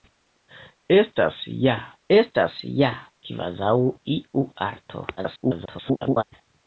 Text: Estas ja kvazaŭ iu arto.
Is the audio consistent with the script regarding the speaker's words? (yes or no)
no